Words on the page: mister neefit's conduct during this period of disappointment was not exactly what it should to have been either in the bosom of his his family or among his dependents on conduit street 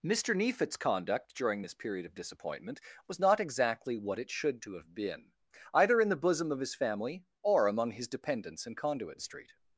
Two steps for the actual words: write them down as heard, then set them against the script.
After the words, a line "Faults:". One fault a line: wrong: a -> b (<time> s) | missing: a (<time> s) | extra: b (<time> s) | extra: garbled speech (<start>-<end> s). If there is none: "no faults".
mister neefit's conduct during this period of disappointment was not exactly what it should to have been either in the bosom of his family or among his dependents in conduit street
Faults:
missing: his (6.8 s)
wrong: on -> in (8.6 s)